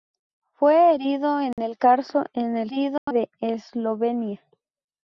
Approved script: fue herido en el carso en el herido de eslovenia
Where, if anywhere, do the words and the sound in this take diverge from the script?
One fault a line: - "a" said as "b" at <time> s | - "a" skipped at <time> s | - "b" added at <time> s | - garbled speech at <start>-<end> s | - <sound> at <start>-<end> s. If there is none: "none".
- dropout at 1.5-1.6 s
- dropout at 3.0-3.1 s